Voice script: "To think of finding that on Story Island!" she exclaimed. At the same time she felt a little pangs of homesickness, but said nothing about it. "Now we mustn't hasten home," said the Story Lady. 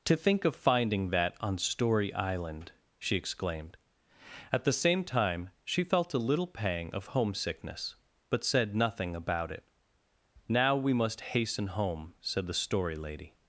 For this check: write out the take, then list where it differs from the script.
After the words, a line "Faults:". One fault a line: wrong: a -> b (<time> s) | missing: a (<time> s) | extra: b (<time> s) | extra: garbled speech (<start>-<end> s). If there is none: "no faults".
"To think of finding that on Story Island!" she exclaimed. At the same time she felt a little pang of homesickness, but said nothing about it. "Now we must hasten home," said the Story Lady.
Faults:
wrong: pangs -> pang (6.5 s)
wrong: mustn't -> must (10.9 s)